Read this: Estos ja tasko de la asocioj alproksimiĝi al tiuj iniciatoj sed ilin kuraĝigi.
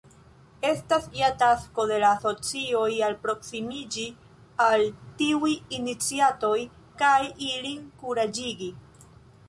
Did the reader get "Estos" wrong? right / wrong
wrong